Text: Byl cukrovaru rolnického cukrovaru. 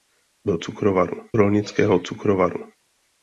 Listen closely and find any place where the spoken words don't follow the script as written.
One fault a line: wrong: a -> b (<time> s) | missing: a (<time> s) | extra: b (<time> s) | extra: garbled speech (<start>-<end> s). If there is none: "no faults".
no faults